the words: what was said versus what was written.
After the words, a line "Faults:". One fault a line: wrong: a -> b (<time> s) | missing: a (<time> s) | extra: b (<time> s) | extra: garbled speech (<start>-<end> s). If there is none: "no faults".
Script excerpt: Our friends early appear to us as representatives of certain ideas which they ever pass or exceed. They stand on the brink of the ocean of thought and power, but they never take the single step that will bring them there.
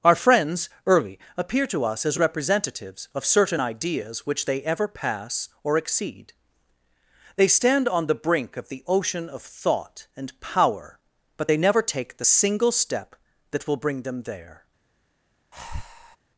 Our friends early appear to us as representatives of certain ideas which they ever pass or exceed. They stand on the brink of the ocean of thought and power, but they never take the single step that will bring them there.
Faults:
no faults